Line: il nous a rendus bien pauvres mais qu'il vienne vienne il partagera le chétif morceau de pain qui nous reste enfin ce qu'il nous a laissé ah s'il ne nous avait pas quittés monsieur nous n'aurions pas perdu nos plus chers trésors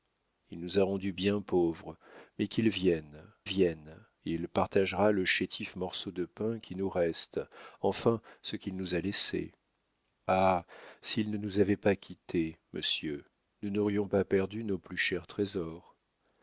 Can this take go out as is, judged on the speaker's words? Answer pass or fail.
pass